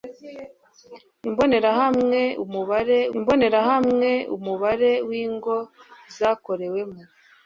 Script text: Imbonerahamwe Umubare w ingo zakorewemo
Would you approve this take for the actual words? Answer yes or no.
no